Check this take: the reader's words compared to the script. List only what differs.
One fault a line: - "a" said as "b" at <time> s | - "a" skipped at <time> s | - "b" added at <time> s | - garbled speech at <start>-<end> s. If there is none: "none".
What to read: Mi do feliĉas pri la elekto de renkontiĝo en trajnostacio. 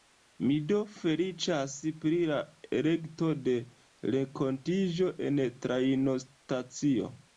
none